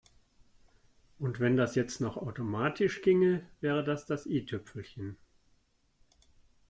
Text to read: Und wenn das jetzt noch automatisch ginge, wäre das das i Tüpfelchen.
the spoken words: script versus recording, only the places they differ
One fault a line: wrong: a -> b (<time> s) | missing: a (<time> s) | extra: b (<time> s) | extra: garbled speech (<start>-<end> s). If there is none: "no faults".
no faults